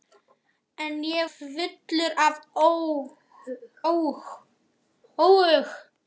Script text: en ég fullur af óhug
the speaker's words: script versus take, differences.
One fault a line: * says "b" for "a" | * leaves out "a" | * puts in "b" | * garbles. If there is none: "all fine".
all fine